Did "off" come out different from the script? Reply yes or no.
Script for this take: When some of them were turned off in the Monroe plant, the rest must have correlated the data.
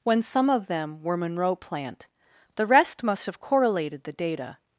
yes